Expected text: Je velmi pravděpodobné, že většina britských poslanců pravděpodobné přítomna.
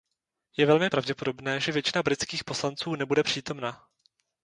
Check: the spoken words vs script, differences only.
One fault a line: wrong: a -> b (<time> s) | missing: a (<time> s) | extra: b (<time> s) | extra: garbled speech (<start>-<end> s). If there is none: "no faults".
wrong: pravděpodobné -> nebude (2.9 s)